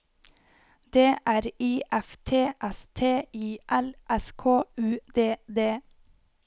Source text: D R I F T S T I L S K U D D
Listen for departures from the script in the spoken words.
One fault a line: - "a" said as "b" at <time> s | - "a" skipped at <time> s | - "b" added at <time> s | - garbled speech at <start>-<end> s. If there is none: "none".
none